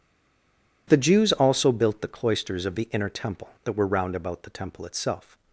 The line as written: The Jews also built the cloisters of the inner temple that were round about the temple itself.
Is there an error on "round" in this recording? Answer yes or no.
no